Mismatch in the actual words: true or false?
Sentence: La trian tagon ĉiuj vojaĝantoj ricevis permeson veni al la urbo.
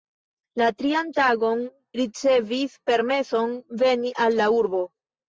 true